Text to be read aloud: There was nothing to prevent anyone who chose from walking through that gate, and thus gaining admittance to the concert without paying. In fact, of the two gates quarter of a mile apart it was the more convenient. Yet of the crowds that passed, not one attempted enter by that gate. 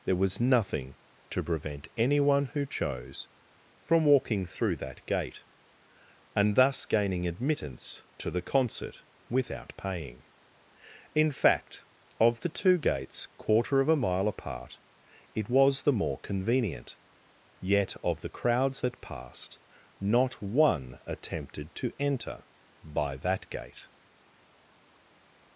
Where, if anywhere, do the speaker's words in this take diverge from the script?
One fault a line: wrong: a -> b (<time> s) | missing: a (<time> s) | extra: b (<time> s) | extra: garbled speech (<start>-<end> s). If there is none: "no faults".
extra: to (21.7 s)